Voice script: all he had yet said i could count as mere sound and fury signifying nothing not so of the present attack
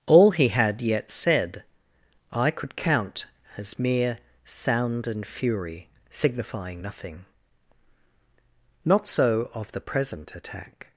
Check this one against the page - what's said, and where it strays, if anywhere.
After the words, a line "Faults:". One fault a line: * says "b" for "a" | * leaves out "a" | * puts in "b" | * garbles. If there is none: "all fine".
all he had yet said i could count as mere sound and fury signifying nothing not so of the present attack
Faults:
all fine